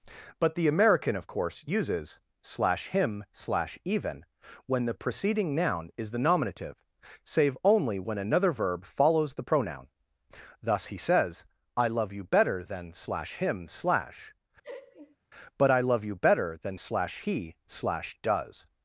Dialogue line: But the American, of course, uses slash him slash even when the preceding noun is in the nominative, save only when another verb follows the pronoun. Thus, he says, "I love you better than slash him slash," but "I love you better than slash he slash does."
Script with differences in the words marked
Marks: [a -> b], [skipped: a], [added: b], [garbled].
But the American, of course, uses slash him slash even when the preceding noun is [skipped: in] the nominative, save only when another verb follows the pronoun. Thus, he says, "I love you better than slash him slash," but "I love you better than slash he slash does."